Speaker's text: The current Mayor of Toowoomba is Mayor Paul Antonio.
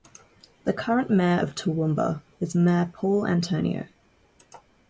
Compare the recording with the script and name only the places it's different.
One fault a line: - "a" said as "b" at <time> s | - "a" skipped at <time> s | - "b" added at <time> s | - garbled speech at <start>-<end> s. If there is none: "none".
none